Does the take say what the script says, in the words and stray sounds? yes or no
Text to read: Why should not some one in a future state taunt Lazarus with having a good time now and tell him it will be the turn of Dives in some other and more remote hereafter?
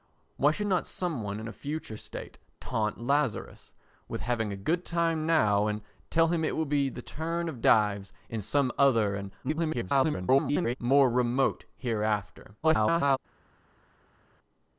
no